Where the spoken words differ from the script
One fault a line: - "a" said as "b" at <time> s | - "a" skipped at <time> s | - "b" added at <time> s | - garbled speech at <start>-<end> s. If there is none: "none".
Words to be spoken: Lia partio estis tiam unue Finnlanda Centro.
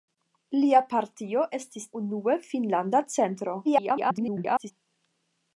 - "tiam" skipped at 1.9 s
- garbled speech at 3.6-4.7 s